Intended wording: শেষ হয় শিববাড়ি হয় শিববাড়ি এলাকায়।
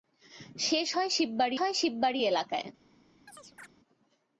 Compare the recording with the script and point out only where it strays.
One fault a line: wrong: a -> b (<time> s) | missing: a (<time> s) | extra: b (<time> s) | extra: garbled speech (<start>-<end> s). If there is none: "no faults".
no faults